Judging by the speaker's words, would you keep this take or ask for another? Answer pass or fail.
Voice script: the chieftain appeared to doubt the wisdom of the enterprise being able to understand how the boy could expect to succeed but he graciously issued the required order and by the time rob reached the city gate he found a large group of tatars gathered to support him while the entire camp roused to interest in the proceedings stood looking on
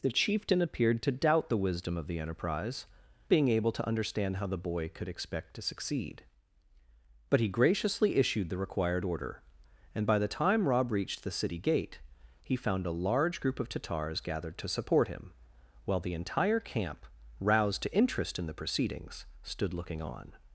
pass